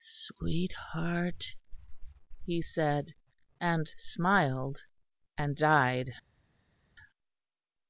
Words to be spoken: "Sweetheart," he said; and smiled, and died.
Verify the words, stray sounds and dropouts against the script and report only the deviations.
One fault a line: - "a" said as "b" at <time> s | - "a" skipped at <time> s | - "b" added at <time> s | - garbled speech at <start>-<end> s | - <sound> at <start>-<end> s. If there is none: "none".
none